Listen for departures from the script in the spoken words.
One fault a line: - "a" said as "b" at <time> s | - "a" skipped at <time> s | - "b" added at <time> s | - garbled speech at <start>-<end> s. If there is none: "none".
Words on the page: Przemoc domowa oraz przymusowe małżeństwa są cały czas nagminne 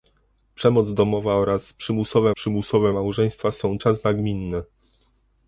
- "przymusowe" added at 2.3 s
- "cały" skipped at 3.8 s